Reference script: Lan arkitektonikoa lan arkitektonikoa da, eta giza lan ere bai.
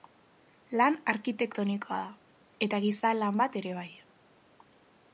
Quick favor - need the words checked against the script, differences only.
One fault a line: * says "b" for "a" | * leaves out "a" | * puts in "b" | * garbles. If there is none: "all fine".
* leaves out "lan arkitektonikoa"
* puts in "bat"